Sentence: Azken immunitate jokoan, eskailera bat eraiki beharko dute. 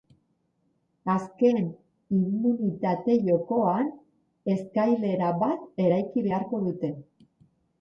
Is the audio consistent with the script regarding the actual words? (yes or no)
yes